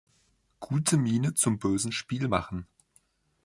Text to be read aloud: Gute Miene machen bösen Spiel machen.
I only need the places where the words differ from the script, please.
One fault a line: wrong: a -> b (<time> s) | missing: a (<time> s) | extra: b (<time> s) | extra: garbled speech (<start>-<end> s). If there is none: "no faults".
wrong: machen -> zum (1.4 s)